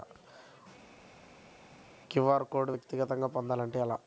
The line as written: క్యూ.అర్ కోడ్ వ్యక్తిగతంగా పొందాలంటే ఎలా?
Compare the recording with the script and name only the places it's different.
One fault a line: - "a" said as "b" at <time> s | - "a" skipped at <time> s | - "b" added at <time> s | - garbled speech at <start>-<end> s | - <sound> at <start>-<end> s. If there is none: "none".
none